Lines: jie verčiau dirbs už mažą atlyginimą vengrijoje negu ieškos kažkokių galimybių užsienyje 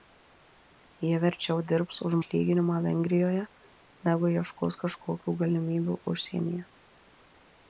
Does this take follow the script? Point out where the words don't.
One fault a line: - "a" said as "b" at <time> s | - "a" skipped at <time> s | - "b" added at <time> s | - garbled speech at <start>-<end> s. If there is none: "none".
- "mažą" skipped at 2.1 s